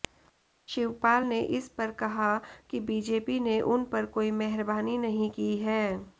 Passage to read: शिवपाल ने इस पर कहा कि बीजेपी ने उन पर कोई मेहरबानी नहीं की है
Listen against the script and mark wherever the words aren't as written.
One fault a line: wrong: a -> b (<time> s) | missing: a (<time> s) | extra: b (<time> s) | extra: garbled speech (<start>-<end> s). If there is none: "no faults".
no faults